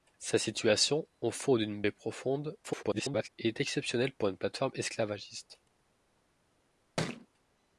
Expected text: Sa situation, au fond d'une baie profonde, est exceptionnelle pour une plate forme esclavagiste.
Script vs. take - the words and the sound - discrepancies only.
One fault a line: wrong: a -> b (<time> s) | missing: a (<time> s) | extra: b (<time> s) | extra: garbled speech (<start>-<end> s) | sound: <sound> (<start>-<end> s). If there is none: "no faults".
extra: garbled speech (2.6-3.3 s)
sound: thud (7.0-7.3 s)